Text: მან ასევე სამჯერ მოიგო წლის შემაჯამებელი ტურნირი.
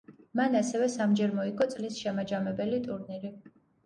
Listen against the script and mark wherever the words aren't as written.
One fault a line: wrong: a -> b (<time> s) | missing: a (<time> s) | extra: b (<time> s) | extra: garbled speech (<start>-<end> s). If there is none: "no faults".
no faults